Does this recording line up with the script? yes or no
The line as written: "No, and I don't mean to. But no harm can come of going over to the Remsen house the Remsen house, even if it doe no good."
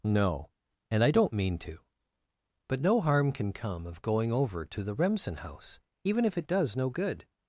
no